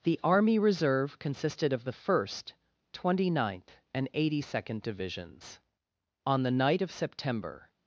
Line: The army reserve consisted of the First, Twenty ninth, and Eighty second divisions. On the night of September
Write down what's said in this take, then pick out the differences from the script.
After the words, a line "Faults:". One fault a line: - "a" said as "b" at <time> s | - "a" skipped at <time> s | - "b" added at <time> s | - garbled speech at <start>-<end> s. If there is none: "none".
The army reserve consisted of the First, Twenty ninth, and Eighty second divisions. On the night of September
Faults:
none